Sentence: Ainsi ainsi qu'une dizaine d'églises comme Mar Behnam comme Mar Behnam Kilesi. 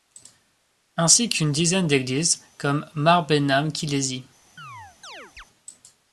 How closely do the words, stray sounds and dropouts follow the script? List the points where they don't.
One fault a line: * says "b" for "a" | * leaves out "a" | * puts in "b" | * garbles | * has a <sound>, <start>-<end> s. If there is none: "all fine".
* leaves out "ainsi"
* leaves out "comme Mar Behnam"
* has a chirp, 4.6-5.4 s